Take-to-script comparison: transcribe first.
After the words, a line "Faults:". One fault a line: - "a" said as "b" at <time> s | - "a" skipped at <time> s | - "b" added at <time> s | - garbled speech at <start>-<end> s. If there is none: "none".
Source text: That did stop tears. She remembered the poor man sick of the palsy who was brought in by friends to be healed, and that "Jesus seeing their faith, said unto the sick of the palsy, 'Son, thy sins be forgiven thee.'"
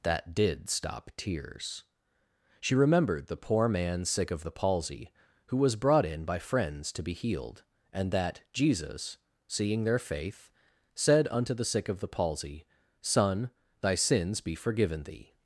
That did stop tears. She remembered the poor man sick of the palsy who was brought in by friends to be healed, and that "Jesus seeing their faith, said unto the sick of the palsy, 'Son, thy sins be forgiven thee.'"
Faults:
none